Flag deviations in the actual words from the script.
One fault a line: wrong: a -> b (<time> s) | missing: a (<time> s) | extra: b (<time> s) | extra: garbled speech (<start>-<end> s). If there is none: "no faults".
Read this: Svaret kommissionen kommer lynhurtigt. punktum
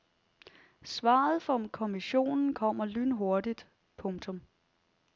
extra: fra (1.4 s)